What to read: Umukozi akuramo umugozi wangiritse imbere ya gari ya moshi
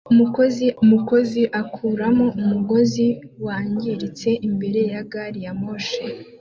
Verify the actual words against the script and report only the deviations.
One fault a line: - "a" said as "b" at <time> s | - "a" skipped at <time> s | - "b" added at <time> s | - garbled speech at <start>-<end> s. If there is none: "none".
- "umukozi" added at 0.8 s